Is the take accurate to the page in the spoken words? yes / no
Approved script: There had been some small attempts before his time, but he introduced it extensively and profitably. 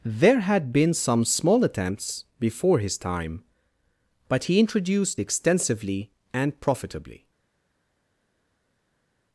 no